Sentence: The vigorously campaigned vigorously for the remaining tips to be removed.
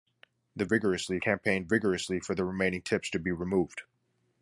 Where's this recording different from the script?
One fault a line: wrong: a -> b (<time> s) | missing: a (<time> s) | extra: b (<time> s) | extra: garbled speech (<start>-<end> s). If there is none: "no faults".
no faults